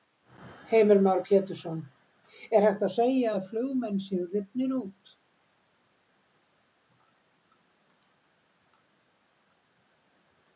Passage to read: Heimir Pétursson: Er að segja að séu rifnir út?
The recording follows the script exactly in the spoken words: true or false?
false